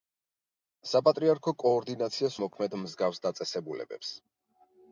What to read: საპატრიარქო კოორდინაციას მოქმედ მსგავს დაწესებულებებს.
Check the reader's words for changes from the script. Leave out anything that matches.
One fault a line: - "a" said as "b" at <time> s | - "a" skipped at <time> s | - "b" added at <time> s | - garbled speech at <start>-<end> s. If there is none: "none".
none